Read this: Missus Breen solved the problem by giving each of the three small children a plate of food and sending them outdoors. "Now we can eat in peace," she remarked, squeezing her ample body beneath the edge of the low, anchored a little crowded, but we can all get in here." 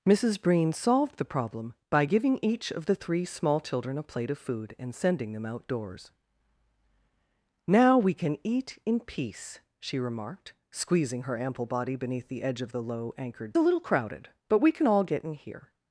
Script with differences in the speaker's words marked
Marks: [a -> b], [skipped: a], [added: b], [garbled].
Missus Breen solved the problem by giving each of the three small children a plate of food and sending them outdoors. "Now we can eat in peace," she remarked, squeezing her ample body beneath the edge of the low, anchored a little crowded, but we can all get in here."